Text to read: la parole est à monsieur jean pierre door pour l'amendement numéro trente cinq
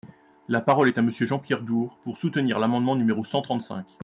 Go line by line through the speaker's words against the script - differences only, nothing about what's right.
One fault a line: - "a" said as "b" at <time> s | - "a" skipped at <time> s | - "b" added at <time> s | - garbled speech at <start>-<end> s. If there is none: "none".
- "soutenir" added at 2.2 s
- "cent" added at 3.2 s